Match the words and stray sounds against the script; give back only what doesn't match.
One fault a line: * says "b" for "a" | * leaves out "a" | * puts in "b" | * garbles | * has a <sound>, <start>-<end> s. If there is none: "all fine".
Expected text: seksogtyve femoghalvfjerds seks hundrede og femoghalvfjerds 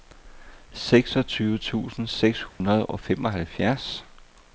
* says "tusind" for "femoghalvfjerds"
* has a dropout, 2.5-2.6 s